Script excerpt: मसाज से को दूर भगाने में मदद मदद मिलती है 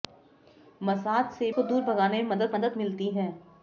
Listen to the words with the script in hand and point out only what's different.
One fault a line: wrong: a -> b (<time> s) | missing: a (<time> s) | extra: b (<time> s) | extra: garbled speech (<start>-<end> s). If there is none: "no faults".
no faults